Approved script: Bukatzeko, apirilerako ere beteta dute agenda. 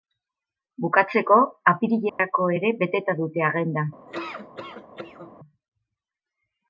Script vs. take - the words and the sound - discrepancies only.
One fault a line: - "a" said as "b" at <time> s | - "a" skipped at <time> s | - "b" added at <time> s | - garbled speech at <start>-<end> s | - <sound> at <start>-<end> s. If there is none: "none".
- dropout at 2.1-2.2 s
- laugh at 4.1-5.3 s